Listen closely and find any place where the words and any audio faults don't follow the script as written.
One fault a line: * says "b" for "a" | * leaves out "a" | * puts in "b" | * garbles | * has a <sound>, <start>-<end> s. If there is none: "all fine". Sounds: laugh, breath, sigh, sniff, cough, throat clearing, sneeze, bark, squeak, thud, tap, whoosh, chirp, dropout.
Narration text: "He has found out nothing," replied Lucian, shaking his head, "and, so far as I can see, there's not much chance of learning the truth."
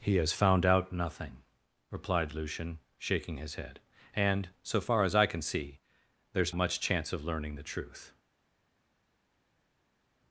* leaves out "not"